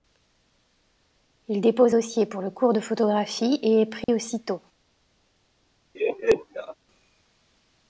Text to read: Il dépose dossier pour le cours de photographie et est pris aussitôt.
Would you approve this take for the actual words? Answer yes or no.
yes